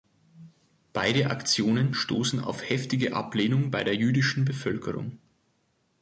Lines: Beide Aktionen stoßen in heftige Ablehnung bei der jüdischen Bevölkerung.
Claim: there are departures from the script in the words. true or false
true